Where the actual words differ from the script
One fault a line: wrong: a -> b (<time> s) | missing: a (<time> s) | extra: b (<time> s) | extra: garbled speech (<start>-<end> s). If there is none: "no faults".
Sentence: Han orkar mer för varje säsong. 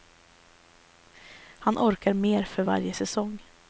no faults